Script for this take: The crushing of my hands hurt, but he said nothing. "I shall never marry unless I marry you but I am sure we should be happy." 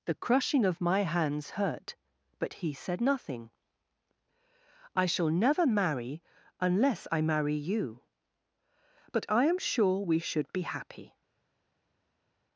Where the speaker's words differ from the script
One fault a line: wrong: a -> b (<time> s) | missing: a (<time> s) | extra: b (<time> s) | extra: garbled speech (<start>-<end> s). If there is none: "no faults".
no faults